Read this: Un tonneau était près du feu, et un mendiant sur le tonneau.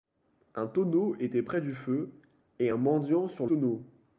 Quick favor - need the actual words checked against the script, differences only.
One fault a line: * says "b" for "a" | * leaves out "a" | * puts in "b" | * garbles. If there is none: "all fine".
* leaves out "le"